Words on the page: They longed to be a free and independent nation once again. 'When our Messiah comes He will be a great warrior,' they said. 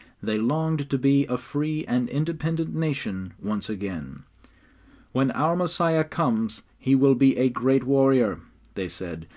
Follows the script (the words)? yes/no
yes